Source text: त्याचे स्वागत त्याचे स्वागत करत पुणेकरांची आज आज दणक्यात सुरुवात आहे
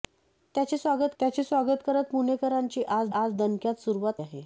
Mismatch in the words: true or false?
false